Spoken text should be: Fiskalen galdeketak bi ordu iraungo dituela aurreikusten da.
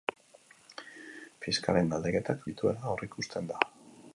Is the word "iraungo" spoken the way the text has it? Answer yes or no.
no